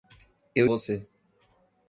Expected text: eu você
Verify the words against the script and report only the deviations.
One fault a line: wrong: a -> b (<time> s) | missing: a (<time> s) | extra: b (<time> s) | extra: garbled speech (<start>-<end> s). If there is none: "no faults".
no faults